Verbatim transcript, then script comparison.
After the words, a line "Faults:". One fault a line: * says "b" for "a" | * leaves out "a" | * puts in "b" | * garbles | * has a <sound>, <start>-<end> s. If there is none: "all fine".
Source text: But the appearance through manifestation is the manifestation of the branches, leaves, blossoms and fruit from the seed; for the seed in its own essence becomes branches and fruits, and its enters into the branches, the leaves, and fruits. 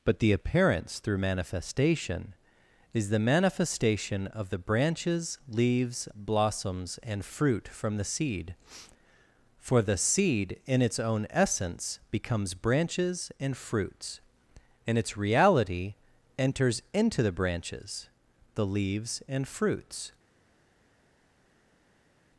But the appearance through manifestation is the manifestation of the branches, leaves, blossoms and fruit from the seed; for the seed in its own essence becomes branches and fruits, and its reality enters into the branches, the leaves, and fruits.
Faults:
* puts in "reality"